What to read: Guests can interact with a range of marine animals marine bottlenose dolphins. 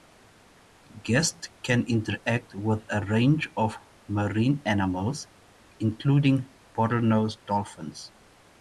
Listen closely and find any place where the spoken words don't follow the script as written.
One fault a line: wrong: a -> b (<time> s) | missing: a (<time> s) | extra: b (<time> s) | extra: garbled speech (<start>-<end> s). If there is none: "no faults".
wrong: marine -> including (5.8 s)